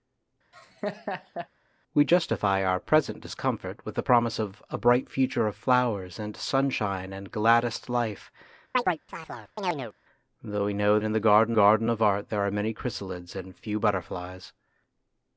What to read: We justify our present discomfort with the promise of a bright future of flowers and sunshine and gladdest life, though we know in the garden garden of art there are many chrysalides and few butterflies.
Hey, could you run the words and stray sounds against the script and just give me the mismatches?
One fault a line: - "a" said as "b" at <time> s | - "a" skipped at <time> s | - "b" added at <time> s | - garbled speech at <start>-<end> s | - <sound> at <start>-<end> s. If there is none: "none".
- laugh at 0.5-1.5 s
- chirp at 8.7-9.9 s